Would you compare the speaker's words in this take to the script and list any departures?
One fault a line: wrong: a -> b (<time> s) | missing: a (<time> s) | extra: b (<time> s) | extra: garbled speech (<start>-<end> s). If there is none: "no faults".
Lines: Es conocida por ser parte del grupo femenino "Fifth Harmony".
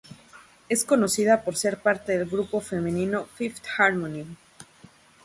no faults